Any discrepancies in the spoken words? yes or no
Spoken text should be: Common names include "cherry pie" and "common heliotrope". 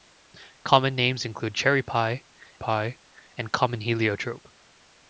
yes